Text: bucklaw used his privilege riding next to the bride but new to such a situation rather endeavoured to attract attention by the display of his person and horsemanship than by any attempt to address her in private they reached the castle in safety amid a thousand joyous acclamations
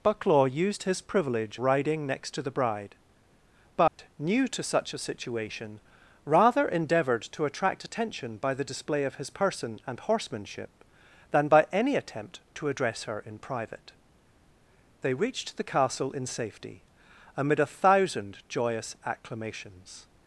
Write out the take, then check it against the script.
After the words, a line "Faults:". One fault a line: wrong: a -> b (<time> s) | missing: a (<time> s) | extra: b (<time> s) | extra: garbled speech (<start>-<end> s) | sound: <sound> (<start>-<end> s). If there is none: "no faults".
bucklaw used his privilege riding next to the bride but new to such a situation rather endeavoured to attract attention by the display of his person and horsemanship than by any attempt to address her in private they reached the castle in safety amid a thousand joyous acclamations
Faults:
sound: dropout (3.9-4.0 s)